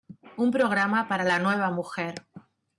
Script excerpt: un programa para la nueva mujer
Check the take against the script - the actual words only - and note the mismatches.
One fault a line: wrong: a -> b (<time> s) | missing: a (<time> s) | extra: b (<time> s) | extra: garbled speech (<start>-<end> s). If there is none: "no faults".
no faults